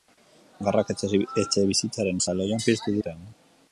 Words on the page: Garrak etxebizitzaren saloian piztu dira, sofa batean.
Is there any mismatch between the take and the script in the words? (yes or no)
yes